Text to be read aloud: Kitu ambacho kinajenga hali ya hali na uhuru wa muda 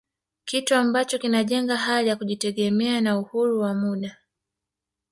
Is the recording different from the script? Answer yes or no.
yes